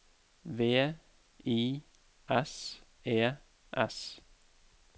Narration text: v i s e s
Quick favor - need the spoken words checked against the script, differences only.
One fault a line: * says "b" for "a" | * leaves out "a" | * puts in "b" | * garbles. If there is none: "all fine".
all fine